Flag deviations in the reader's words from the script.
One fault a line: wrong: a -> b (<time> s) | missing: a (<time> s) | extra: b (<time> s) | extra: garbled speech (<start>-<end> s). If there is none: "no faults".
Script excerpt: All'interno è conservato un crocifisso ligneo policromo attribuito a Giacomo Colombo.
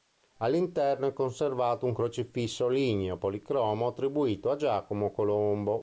no faults